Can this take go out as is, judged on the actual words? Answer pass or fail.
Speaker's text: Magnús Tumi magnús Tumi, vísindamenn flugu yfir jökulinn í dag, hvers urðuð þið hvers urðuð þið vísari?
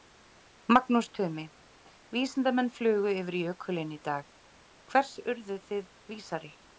fail